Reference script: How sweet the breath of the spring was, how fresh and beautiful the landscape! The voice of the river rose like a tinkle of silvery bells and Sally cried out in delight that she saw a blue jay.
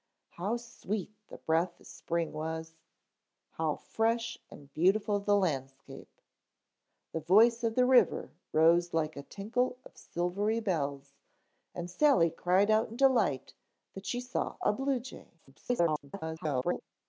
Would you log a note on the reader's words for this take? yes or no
yes